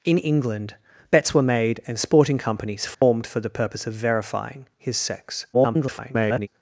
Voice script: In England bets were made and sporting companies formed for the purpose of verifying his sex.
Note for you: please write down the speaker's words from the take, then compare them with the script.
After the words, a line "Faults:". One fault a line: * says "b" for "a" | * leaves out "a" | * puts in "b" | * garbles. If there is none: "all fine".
In England bets were made and sporting companies formed for the purpose of verifying his sex. [garbled]
Faults:
* garbles